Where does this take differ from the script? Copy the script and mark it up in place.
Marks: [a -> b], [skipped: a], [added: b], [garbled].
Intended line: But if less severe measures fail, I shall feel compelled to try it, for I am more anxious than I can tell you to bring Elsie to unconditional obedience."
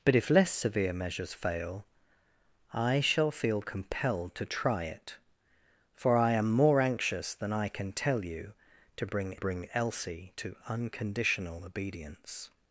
But if less severe measures fail, I shall feel compelled to try it, for I am more anxious than I can tell you to bring [added: bring] Elsie to unconditional obedience."